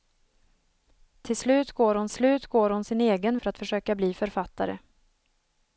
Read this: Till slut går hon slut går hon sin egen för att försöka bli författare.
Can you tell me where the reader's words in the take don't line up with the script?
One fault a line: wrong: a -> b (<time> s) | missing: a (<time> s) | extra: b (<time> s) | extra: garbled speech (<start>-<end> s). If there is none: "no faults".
no faults